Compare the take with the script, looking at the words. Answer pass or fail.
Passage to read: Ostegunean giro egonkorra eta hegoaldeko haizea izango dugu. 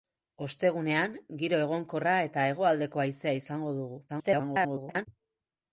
fail